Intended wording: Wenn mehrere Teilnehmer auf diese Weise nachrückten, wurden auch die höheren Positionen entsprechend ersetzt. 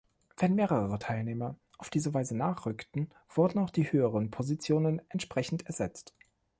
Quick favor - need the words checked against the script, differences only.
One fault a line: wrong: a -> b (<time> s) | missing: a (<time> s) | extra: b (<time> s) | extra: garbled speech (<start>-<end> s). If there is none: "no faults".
no faults